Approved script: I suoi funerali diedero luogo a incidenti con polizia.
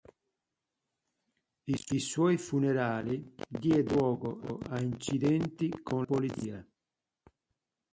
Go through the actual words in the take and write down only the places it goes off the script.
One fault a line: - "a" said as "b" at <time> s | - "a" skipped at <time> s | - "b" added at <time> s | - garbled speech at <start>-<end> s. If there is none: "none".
none